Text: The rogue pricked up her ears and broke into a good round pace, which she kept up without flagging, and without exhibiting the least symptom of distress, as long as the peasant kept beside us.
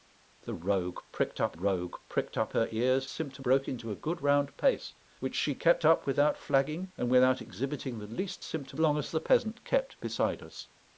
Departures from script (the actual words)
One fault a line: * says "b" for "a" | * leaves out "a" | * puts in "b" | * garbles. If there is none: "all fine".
* puts in "rogue pricked up"
* says "symptom" for "and"
* leaves out "of distress as"